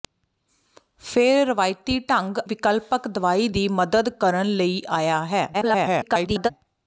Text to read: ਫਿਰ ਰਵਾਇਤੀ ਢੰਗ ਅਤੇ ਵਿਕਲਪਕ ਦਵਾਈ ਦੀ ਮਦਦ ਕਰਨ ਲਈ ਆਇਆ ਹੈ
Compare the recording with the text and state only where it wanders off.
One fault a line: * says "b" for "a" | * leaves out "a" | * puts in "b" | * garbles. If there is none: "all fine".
* leaves out "ਅਤੇ"
* garbles